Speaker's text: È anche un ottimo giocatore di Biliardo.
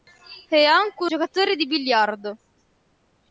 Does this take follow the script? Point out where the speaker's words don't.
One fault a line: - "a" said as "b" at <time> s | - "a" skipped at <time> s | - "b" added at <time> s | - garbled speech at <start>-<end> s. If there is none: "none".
- "ottimo" skipped at 1.1 s